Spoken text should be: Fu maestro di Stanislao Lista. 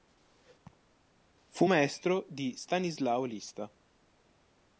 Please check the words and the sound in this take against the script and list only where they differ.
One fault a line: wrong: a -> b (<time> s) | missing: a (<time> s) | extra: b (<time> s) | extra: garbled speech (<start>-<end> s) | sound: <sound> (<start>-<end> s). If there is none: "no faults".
sound: laugh (0.7-0.9 s)